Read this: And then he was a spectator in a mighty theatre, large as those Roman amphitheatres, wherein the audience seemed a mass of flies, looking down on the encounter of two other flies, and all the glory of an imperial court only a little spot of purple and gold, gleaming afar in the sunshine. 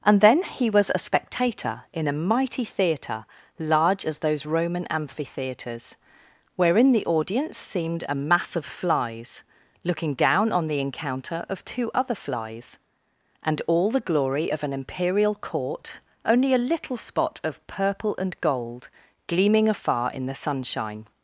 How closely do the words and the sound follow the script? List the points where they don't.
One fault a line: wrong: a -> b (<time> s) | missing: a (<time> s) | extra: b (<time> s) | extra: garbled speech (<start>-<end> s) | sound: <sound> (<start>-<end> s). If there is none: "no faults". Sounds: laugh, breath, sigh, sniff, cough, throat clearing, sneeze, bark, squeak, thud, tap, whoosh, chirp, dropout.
no faults